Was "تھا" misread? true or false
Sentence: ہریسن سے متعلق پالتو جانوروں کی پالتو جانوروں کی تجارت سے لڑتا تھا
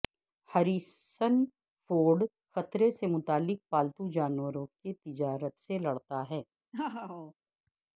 true